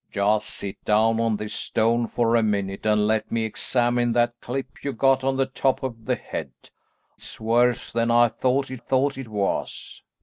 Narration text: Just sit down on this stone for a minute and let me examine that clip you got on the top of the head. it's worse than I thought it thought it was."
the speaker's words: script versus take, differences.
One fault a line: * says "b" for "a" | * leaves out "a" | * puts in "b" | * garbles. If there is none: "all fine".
all fine